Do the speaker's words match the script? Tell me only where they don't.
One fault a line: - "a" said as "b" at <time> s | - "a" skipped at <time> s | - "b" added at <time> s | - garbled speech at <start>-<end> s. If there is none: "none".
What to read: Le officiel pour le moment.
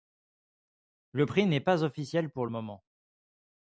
- "prix n'est pas" added at 1.3 s